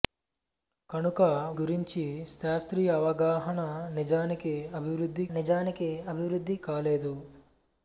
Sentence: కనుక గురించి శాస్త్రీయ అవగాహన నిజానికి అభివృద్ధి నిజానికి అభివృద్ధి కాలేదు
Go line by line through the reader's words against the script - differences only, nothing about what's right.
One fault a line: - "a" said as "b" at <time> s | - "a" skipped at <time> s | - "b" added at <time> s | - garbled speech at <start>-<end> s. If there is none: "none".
none